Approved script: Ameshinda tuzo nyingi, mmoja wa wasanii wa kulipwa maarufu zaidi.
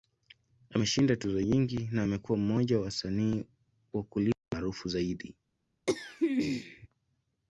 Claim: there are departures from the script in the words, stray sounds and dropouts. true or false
true